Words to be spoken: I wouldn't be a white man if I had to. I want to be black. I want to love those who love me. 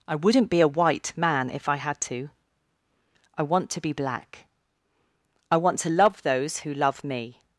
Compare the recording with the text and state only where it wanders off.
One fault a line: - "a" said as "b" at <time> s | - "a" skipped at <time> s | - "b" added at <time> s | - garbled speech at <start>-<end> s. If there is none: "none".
none